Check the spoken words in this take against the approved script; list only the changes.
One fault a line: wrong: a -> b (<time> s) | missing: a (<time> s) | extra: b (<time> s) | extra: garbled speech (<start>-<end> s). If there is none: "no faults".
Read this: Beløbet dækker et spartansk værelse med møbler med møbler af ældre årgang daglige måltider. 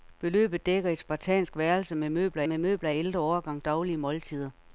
no faults